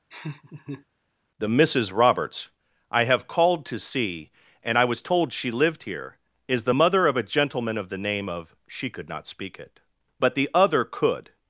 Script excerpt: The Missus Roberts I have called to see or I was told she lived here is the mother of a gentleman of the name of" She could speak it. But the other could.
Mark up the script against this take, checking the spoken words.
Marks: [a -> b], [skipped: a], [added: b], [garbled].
The Missus Roberts I have called to see [or -> and] I was told she lived here is the mother of a gentleman of the name of" She could [added: not] speak it. But the other could.